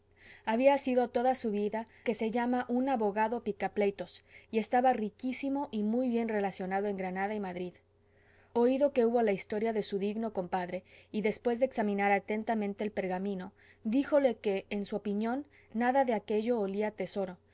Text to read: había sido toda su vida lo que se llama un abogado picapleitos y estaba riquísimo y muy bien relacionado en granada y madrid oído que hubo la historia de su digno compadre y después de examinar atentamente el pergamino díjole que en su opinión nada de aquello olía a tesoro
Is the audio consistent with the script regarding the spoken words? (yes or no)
no